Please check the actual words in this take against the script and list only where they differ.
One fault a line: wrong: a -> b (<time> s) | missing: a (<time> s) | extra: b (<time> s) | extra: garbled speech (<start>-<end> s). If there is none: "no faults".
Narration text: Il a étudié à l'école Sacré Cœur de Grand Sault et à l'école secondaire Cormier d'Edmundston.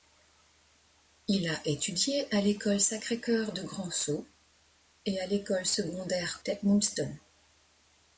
missing: Cormier (6.4 s)